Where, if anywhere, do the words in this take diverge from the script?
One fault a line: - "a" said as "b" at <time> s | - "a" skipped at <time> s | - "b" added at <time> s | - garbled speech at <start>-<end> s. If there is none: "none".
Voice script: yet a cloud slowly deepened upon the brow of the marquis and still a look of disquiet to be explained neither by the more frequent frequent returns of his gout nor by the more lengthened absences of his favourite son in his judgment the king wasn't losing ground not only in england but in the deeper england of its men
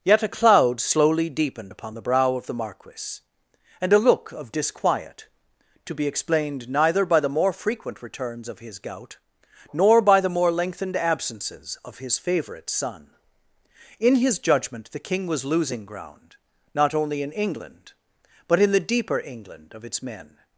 - "still" skipped at 3.9 s
- "frequent" skipped at 8.0 s
- "wasn't" said as "was" at 15.3 s